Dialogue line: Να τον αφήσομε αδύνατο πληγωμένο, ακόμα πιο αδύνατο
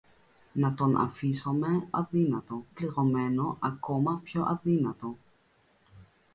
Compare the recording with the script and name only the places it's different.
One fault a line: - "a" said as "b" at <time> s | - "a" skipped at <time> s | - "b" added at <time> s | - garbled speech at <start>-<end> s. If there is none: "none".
none